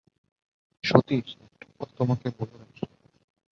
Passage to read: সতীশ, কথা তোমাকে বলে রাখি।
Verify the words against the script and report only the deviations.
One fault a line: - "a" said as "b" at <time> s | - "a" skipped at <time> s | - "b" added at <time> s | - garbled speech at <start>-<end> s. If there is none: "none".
- "একটা" added at 1.4 s